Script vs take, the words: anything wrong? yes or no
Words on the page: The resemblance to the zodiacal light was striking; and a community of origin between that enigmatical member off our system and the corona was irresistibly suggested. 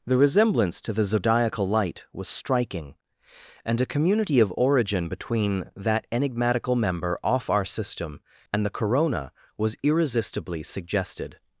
no